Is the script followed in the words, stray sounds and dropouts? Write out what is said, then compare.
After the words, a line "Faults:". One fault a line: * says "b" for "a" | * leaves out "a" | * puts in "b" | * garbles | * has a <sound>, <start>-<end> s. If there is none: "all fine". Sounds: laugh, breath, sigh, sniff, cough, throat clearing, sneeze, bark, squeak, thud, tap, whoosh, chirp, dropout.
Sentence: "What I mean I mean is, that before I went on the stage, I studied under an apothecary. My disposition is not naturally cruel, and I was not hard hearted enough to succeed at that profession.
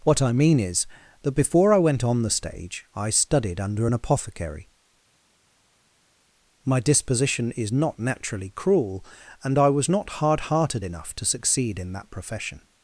"What I mean is, that before I went on the stage, I studied under an apothecary. My disposition is not naturally cruel, and I was not hard hearted enough to succeed in that profession.
Faults:
* leaves out "I mean"
* says "in" for "at"